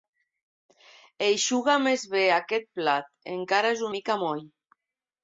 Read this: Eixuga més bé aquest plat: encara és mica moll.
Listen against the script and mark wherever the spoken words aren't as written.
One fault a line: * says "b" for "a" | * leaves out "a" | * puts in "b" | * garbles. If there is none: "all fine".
all fine